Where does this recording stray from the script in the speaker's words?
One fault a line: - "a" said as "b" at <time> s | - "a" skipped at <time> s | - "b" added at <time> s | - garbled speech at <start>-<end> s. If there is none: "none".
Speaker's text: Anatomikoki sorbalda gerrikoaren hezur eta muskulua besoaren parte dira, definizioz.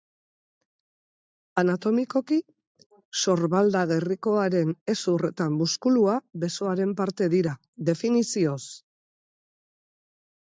none